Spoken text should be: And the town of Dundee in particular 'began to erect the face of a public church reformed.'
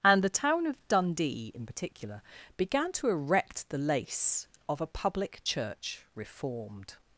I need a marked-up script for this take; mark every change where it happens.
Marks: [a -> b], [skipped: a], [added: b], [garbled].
And the town of Dundee in particular 'began to erect the [face -> lace] of a public church reformed.'